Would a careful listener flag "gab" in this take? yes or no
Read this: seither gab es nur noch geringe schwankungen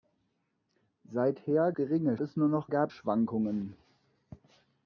yes